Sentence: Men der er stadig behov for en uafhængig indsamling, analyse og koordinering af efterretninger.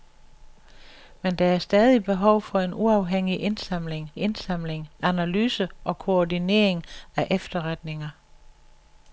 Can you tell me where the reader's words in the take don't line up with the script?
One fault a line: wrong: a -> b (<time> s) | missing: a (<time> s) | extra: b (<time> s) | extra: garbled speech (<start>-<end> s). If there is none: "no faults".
extra: indsamling (4.2 s)